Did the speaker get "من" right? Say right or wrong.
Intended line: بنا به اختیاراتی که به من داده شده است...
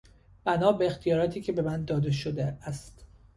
right